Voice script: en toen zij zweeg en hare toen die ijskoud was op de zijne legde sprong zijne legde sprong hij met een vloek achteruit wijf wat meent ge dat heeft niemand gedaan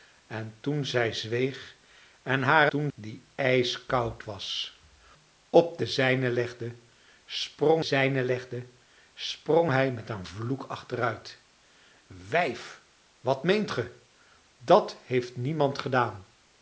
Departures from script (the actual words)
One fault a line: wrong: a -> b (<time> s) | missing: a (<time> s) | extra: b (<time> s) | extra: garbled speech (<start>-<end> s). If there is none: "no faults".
no faults